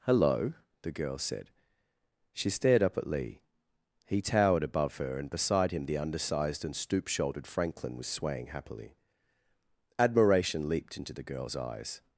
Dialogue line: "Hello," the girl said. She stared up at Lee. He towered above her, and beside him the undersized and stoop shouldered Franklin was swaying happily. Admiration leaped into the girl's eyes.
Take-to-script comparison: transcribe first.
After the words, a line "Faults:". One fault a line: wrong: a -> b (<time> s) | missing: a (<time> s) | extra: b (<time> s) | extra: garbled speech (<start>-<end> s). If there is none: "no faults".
"Hello," the girl said. She stared up at Lee. He towered above her, and beside him the undersized and stoop shouldered Franklin was swaying happily. Admiration leaped into the girl's eyes.
Faults:
no faults